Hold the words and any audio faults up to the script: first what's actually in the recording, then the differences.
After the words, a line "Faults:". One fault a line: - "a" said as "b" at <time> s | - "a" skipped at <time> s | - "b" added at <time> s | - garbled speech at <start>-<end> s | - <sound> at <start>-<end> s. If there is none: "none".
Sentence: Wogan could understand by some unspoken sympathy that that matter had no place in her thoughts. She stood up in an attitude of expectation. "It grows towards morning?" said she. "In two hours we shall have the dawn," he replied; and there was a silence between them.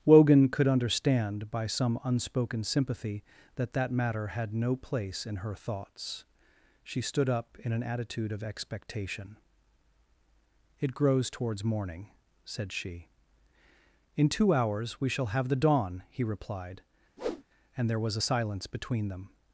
Wogan could understand by some unspoken sympathy that that matter had no place in her thoughts. She stood up in an attitude of expectation. "It grows towards morning?" said she. "In two hours we shall have the dawn," he replied; and there was a silence between them.
Faults:
- whoosh at 17.2-17.4 s